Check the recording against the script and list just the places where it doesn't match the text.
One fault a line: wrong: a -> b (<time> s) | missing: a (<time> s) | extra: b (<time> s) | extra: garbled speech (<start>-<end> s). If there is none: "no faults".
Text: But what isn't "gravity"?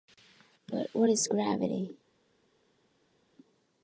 wrong: isn't -> is (1.1 s)